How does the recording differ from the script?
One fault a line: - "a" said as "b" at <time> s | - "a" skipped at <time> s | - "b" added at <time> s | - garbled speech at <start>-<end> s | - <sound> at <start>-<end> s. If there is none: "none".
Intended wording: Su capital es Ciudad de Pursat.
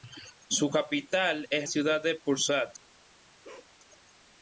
- bark at 3.4-3.7 s